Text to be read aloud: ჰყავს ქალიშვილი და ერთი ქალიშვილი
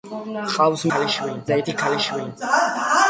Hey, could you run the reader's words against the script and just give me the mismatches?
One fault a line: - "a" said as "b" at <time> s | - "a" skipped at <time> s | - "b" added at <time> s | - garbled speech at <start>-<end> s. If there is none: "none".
none